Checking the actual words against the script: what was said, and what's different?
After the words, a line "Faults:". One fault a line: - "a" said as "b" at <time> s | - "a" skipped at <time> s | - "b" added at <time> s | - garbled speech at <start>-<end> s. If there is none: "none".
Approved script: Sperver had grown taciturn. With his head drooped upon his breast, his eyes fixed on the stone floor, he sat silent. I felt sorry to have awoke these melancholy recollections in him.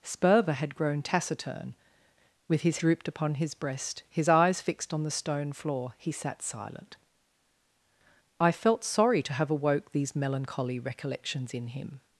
Sperver had grown taciturn. With his drooped upon his breast, his eyes fixed on the stone floor, he sat silent. I felt sorry to have awoke these melancholy recollections in him.
Faults:
- "head" skipped at 2.8 s